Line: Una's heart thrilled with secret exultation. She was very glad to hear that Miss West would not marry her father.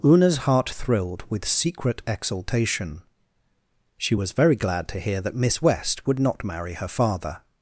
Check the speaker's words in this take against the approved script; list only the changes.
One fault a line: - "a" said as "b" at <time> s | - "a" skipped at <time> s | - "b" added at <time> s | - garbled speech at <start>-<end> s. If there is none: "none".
none